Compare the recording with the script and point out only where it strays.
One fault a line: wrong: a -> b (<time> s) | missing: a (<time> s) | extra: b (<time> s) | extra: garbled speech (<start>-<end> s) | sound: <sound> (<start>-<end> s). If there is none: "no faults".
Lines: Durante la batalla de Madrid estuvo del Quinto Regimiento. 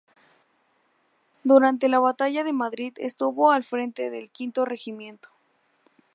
extra: al frente (3.5 s)